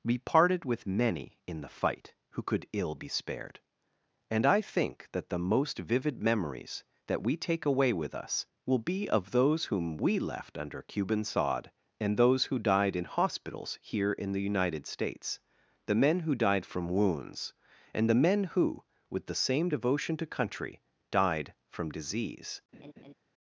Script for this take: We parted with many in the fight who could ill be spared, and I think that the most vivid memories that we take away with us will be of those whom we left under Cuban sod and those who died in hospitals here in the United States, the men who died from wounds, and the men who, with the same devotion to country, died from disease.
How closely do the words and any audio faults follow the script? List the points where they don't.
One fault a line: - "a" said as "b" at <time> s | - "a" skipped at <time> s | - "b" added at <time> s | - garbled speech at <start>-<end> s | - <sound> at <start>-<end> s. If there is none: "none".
- laugh at 22.7-23.1 s